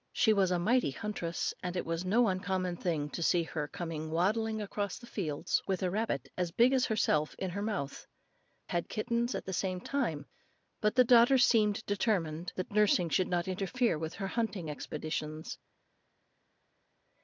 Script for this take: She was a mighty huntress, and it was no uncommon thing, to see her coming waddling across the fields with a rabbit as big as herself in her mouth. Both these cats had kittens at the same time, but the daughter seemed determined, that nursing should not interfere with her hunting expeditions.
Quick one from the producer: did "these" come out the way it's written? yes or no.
no